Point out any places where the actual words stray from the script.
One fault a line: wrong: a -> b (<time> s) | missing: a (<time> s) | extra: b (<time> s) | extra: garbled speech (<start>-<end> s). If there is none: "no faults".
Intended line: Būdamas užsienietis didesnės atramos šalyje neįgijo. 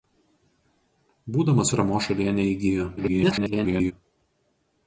missing: užsienietis didesnės (1.7 s)
extra: garbled speech (3.0-3.9 s)